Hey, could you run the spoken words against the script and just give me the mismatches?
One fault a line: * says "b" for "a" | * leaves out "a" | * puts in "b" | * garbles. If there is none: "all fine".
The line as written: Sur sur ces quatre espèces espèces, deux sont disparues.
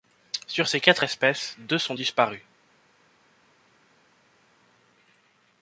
* leaves out "sur"
* leaves out "espèces"